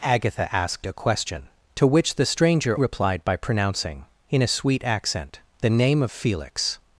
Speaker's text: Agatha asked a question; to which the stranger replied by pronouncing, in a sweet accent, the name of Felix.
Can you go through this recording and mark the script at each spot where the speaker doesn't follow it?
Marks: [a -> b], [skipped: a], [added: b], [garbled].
Agatha asked a question; to which the stranger replied by pronouncing, in a sweet accent, the name of Felix.